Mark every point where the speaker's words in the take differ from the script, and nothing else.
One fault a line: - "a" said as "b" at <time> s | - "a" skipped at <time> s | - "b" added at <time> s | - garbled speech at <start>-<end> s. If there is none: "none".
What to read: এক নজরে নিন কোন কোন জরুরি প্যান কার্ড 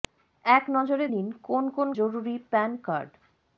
none